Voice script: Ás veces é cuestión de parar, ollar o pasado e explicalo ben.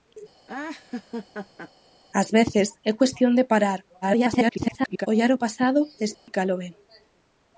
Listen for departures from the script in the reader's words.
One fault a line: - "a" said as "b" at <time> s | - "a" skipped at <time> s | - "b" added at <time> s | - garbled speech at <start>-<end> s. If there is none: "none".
- garbled speech at 4.0-5.1 s